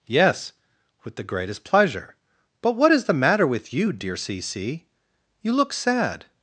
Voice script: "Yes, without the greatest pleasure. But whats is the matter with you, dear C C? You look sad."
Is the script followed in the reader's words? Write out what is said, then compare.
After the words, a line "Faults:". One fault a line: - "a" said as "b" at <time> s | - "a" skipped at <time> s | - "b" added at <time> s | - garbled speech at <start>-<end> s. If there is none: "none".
"Yes, with the greatest pleasure. But what is the matter with you, dear C C? You look sad."
Faults:
- "without" said as "with" at 1.0 s
- "whats" said as "what" at 2.7 s